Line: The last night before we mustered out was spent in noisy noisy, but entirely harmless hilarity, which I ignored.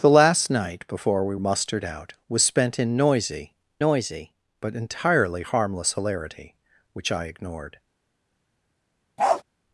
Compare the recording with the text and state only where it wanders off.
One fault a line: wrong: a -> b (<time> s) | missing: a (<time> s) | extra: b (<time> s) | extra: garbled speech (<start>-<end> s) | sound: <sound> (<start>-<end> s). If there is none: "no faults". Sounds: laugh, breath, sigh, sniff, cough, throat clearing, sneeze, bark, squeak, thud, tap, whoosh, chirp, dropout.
sound: bark (9.2-9.4 s)